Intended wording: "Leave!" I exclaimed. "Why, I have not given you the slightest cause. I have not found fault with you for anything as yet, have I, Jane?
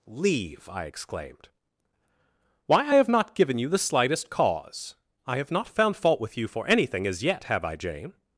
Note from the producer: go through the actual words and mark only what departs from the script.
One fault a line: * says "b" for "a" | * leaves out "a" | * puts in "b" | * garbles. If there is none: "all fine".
all fine